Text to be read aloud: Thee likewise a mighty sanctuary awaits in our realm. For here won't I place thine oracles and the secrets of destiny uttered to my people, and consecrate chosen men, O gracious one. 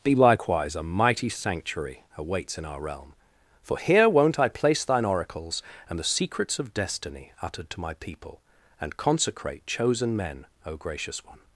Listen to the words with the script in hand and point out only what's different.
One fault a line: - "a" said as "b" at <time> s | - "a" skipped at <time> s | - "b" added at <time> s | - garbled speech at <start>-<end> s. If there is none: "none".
none